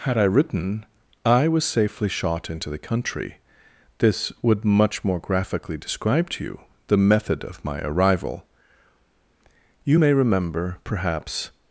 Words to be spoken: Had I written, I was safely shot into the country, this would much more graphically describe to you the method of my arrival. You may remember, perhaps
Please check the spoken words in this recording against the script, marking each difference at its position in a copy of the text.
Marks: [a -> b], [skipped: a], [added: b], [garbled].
Had I written, I was safely shot into the country, this would much more graphically describe to you the method of my arrival. You may remember, perhaps